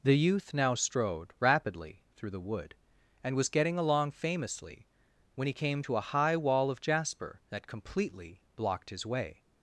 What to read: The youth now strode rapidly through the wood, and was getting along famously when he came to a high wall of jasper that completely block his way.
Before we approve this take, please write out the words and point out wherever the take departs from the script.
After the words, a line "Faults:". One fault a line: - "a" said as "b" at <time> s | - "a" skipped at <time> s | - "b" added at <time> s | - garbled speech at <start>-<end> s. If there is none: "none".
The youth now strode rapidly through the wood, and was getting along famously when he came to a high wall of jasper that completely blocked his way.
Faults:
- "block" said as "blocked" at 8.5 s